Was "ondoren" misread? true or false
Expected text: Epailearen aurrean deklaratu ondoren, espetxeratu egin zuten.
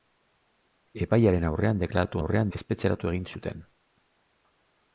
true